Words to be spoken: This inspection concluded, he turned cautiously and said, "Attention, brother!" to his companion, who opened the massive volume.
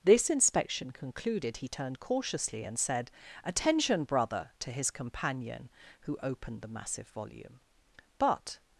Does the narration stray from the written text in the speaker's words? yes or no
yes